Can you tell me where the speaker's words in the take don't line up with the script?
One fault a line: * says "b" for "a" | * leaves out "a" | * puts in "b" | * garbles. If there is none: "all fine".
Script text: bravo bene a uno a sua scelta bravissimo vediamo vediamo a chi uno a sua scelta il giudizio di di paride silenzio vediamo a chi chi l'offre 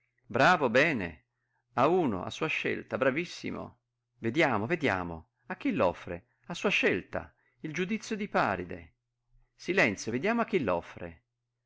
* says "l'offre" for "uno"
* leaves out "di"
* leaves out "chi"